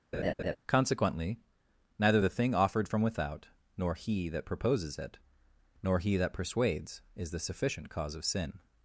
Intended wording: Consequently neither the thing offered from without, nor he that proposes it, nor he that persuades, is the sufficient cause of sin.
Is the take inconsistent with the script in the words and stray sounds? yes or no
yes